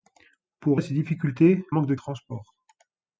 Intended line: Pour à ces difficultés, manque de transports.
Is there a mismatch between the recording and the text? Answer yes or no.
no